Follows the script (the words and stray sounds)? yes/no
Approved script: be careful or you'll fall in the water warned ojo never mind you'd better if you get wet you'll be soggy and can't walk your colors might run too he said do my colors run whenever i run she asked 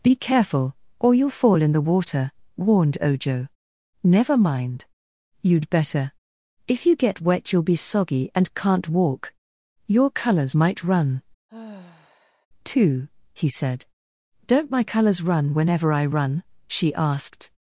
no